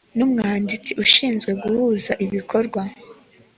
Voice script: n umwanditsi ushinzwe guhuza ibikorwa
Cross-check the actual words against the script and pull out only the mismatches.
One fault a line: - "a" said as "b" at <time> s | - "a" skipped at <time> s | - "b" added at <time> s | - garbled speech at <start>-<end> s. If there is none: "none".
none